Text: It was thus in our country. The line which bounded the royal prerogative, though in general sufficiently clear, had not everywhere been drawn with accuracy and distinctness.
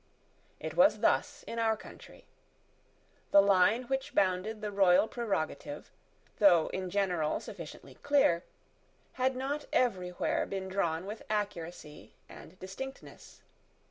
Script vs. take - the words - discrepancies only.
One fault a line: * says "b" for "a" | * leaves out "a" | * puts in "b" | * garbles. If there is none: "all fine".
all fine